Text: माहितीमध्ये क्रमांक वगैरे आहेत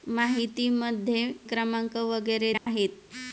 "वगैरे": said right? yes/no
yes